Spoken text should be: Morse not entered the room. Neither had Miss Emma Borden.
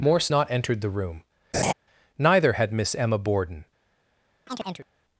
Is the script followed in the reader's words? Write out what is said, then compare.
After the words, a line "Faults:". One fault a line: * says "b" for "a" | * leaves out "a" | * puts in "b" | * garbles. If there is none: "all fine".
Morse not entered the room. Neither had Miss Emma Borden.
Faults:
all fine